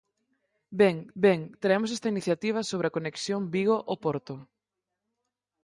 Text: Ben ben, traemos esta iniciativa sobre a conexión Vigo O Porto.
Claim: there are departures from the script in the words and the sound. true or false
false